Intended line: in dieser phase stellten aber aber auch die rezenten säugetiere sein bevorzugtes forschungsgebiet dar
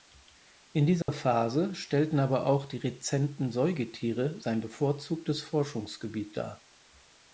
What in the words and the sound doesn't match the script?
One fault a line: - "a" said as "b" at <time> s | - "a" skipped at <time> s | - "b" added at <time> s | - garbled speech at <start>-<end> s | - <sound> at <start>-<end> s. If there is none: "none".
- dropout at 1.0-1.1 s
- "aber" skipped at 2.5 s